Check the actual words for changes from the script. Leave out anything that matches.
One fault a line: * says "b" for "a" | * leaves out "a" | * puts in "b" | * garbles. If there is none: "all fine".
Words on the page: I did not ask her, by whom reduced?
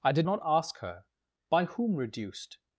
all fine